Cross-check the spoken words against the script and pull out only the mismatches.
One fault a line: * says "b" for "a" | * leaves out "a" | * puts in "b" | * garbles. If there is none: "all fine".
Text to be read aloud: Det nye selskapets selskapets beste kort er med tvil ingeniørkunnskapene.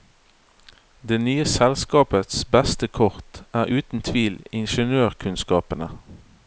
* leaves out "selskapets"
* says "uten" for "med"